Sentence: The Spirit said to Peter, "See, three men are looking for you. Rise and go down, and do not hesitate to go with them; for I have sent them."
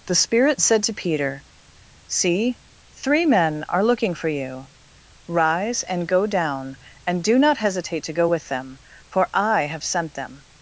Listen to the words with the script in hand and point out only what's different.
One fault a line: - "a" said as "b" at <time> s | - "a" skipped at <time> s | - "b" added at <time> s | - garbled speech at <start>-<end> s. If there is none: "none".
none